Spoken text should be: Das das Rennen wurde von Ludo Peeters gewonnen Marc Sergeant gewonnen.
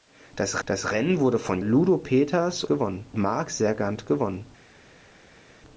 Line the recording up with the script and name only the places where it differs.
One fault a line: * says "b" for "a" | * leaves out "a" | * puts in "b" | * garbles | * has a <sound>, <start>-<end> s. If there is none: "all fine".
all fine